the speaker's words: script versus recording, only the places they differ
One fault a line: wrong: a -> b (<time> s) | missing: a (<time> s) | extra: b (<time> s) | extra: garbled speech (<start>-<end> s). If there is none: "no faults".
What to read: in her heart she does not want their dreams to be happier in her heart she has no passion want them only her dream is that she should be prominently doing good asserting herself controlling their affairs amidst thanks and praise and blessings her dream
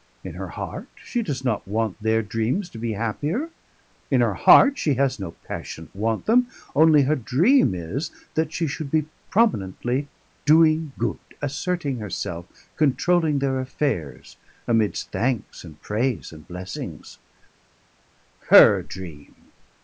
no faults